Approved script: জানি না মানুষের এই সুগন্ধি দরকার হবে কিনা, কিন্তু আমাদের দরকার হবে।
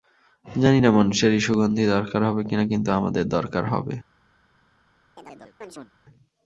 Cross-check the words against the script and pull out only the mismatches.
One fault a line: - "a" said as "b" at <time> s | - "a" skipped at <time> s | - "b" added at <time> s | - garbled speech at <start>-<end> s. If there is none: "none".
none